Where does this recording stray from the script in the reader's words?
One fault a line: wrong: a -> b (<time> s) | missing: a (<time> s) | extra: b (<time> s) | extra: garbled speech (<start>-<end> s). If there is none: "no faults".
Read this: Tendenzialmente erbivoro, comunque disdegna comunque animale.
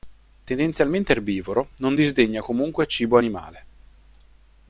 wrong: comunque -> non (1.8 s)
extra: cibo (2.9 s)